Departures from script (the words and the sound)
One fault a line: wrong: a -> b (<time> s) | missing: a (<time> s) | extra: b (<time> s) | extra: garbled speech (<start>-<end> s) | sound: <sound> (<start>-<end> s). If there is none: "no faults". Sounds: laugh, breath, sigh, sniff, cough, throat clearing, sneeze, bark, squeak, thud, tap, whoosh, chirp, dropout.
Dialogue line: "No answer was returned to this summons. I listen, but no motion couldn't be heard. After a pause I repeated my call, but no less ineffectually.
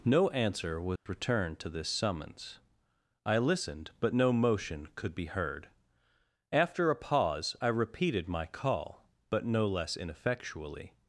sound: dropout (1.0-1.1 s)
wrong: listen -> listened (3.4 s)
wrong: couldn't -> could (4.9 s)